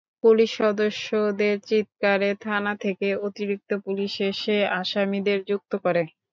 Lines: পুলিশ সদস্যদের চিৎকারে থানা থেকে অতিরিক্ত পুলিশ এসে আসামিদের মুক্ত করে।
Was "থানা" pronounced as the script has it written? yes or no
yes